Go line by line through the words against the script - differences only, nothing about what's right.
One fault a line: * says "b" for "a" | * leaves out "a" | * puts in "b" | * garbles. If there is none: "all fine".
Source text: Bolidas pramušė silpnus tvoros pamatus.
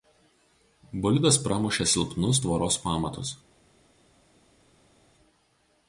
all fine